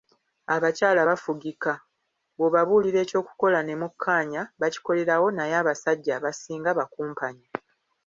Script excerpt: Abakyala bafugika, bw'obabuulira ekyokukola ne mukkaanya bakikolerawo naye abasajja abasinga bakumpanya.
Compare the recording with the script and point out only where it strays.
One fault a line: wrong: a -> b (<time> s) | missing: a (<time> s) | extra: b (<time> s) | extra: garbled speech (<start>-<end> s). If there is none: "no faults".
no faults